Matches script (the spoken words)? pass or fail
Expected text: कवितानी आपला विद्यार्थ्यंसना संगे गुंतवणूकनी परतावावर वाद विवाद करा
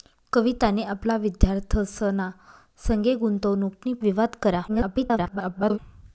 fail